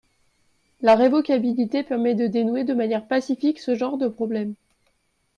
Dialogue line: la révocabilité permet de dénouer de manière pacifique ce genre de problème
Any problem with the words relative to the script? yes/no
no